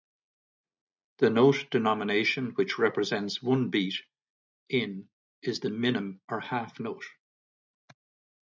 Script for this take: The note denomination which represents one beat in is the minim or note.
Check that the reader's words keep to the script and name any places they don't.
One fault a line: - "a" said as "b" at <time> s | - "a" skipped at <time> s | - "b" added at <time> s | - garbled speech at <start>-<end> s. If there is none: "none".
- "half" added at 6.4 s